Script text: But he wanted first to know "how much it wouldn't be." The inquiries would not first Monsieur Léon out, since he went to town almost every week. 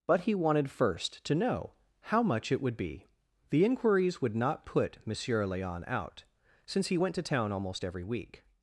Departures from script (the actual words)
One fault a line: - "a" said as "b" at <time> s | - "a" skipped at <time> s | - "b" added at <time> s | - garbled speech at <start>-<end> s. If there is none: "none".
- "wouldn't" said as "would" at 2.6 s
- "first" said as "put" at 4.7 s